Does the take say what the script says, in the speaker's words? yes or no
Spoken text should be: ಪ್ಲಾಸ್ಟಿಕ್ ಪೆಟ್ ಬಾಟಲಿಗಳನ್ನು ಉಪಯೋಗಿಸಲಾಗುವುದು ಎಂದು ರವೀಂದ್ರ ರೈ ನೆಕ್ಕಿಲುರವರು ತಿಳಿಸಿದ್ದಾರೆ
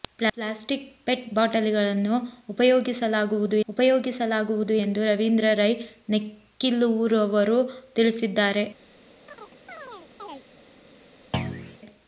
no